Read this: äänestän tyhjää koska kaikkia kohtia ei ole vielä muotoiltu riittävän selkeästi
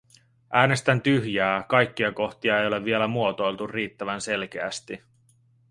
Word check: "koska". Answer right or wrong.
wrong